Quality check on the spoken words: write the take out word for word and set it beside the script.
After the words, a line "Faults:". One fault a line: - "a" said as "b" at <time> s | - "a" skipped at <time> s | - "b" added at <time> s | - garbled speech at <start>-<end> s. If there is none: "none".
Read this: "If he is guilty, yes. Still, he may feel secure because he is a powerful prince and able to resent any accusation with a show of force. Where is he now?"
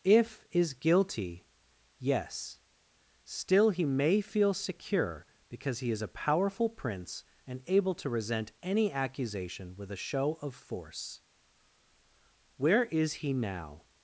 "If is guilty, yes. Still, he may feel secure because he is a powerful prince and able to resent any accusation with a show of force. Where is he now?"
Faults:
- "he" skipped at 0.5 s